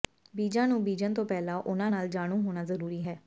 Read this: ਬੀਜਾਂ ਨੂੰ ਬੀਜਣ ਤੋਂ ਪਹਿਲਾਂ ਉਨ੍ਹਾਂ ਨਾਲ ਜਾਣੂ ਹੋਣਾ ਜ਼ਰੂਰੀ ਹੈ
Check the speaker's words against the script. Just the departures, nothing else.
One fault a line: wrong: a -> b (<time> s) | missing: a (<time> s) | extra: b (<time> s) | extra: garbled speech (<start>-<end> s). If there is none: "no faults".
no faults